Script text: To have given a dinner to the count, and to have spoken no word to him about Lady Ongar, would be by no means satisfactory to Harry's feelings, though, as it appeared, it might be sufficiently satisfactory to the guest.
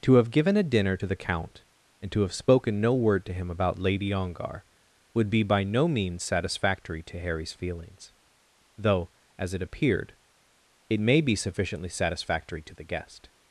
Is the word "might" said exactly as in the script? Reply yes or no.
no